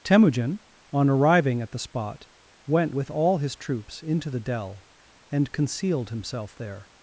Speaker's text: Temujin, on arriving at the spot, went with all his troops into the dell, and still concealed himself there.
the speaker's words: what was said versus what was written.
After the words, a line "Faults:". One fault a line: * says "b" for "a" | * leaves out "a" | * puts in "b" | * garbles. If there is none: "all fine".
Temujin, on arriving at the spot, went with all his troops into the dell, and concealed himself there.
Faults:
* leaves out "still"